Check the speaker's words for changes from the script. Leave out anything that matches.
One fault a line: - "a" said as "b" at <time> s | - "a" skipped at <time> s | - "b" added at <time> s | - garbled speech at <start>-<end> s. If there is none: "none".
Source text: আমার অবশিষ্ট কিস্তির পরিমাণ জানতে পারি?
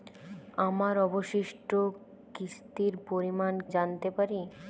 none